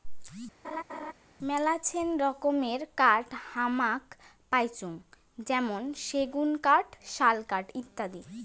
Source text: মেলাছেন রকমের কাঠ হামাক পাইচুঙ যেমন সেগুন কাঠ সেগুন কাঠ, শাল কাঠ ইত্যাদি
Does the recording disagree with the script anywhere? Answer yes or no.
yes